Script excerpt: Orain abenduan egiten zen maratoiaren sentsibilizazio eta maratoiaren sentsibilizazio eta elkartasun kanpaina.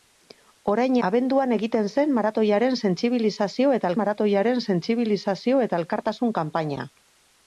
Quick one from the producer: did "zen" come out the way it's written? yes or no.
yes